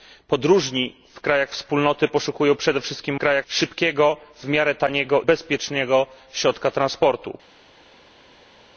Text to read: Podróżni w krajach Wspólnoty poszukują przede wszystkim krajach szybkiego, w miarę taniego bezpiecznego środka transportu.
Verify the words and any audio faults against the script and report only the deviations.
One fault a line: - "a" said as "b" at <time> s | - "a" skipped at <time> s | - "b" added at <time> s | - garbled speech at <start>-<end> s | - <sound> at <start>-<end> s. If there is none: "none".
none